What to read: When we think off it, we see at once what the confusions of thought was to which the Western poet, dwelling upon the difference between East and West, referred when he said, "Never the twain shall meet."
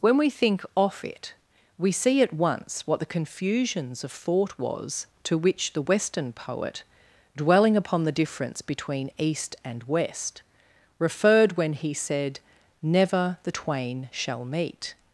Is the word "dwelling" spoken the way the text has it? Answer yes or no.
yes